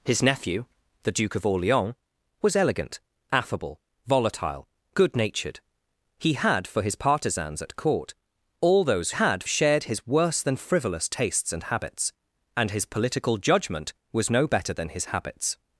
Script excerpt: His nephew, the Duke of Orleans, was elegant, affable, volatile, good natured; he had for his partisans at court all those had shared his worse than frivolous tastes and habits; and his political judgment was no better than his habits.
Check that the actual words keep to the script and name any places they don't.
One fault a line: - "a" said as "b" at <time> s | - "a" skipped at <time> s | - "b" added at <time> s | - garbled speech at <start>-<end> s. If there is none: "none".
none